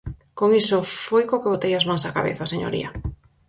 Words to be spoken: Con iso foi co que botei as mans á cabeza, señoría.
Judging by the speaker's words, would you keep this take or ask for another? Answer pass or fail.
pass